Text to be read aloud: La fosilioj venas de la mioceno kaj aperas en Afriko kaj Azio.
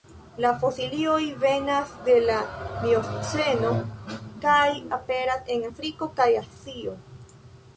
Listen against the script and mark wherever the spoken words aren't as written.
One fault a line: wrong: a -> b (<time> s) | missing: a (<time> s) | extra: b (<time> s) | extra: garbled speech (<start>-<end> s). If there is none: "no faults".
no faults